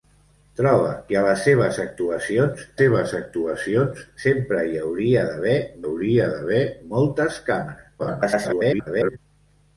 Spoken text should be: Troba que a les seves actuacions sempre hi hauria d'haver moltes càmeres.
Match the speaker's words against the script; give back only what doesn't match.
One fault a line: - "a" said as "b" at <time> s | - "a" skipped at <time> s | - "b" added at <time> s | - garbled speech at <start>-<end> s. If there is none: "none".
- "seves actuacions" added at 2.8 s
- "hauria d'haver" added at 5.8 s
- garbled speech at 8.0-9.2 s